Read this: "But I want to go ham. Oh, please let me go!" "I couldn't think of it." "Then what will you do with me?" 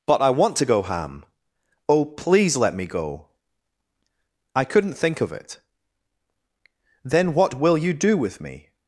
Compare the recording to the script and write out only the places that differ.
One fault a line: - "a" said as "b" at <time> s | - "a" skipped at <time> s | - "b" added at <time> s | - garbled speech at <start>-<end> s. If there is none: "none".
none